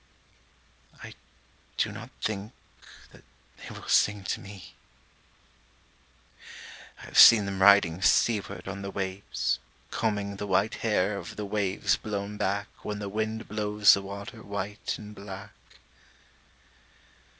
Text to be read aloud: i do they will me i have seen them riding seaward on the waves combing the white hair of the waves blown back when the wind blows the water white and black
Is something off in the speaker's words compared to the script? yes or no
yes